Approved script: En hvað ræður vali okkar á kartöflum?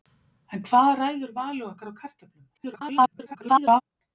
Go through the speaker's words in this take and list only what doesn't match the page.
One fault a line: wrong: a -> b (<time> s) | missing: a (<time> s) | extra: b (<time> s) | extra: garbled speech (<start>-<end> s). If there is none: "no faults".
extra: garbled speech (2.5-3.8 s)